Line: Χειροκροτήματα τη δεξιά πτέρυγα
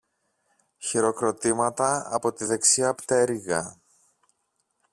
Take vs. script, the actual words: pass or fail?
fail